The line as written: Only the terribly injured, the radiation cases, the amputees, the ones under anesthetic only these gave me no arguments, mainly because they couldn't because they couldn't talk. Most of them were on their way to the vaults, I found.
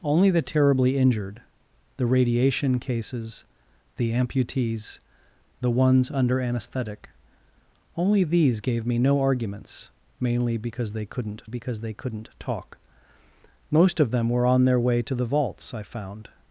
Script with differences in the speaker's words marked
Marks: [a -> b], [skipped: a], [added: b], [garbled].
Only the terribly injured, the radiation cases, the amputees, the ones under anesthetic only these gave me no arguments, mainly because they couldn't because they couldn't talk. Most of them were on their way to the vaults, I found.